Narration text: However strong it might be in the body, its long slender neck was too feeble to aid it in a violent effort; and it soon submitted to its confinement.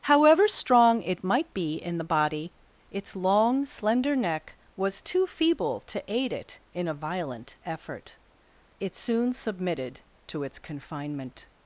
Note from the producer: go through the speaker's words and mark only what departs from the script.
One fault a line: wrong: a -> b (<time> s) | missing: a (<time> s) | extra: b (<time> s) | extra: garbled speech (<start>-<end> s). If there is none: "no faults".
missing: and (8.2 s)